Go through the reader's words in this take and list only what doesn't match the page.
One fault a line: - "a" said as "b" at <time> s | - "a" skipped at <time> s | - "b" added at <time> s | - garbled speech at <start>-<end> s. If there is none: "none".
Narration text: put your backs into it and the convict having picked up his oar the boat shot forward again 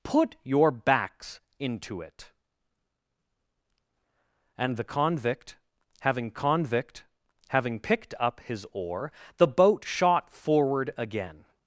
- "convict having" added at 6.3 s